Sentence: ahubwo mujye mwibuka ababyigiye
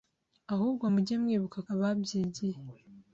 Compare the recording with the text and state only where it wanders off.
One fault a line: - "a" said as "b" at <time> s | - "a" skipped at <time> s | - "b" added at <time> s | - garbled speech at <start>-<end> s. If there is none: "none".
none